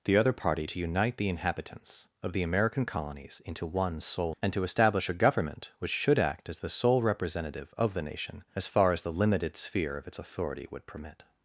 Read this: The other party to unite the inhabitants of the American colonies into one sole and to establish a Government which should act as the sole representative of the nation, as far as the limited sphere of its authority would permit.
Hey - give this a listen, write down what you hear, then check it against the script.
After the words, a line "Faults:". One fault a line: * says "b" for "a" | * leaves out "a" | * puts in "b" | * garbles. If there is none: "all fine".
The other party to unite the inhabitants of the American colonies into one sole and to establish a Government which should act as the sole representative of the nation, as far as the limited sphere of its authority would permit.
Faults:
all fine